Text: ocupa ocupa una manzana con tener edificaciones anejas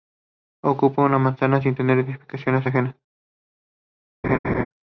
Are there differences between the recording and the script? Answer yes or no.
yes